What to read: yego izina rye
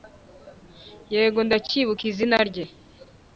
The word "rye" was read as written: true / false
true